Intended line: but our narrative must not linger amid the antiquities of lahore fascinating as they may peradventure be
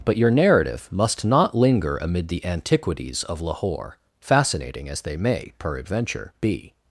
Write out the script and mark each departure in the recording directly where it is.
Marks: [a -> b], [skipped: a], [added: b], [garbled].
but [our -> your] narrative must not linger amid the antiquities of lahore fascinating as they may peradventure be